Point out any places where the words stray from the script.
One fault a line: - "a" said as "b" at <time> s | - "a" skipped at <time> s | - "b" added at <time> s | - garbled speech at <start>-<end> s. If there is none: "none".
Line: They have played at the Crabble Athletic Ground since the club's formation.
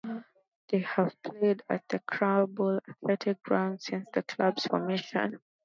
none